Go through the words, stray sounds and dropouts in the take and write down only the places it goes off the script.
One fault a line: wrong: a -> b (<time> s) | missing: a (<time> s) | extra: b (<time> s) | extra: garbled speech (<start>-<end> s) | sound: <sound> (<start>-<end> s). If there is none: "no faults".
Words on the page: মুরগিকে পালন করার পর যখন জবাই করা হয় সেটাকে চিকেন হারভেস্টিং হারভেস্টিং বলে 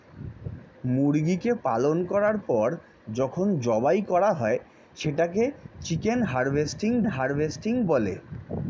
no faults